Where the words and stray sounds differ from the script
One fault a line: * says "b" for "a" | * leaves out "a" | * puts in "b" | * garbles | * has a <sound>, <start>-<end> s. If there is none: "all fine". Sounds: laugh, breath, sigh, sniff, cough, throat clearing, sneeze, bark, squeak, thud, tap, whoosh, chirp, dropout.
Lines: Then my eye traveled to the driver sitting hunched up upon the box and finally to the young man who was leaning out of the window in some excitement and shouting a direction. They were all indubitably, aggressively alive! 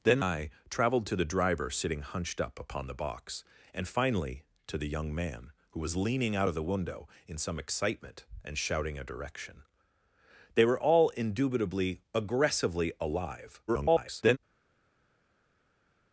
* leaves out "my"
* garbles